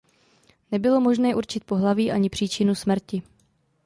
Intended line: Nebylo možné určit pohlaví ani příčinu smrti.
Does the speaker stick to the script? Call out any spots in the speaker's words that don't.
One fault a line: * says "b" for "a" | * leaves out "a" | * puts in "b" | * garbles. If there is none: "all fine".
all fine